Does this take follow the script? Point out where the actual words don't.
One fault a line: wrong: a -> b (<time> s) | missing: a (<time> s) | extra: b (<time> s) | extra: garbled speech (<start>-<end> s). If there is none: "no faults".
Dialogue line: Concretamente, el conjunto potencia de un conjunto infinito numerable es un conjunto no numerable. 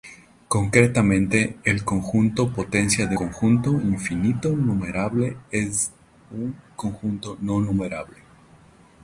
missing: un (3.2 s)